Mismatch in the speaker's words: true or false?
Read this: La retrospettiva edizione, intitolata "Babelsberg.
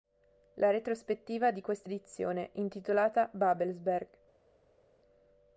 true